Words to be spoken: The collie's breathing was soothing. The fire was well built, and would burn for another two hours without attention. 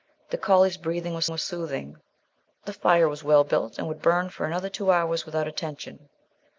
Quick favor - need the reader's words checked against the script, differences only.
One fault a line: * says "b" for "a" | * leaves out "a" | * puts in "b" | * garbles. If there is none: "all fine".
* puts in "was"